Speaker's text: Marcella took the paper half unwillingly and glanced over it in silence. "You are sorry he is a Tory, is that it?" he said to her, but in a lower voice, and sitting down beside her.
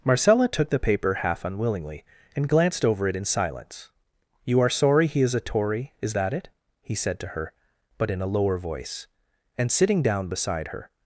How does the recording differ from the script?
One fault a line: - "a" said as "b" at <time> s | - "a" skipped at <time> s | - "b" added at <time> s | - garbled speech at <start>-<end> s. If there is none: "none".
none